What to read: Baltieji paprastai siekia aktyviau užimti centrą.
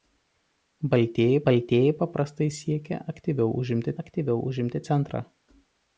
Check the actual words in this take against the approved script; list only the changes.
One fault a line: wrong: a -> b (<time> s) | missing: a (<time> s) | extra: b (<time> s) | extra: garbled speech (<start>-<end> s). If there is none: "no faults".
extra: baltieji (1.5 s)
extra: aktyviau užimti (4.0 s)